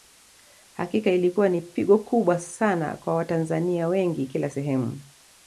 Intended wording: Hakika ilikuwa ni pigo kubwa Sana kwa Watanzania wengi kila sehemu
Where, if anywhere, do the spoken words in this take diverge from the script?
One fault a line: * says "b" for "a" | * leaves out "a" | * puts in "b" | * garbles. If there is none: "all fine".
all fine